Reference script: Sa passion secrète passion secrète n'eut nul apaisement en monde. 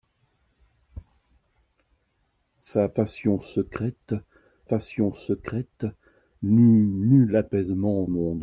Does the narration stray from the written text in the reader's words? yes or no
no